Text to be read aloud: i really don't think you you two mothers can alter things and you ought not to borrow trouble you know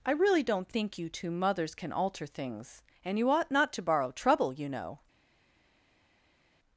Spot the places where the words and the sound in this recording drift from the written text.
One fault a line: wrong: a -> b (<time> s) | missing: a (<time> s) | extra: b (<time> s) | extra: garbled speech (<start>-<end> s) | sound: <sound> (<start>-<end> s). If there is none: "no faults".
missing: you (1.1 s)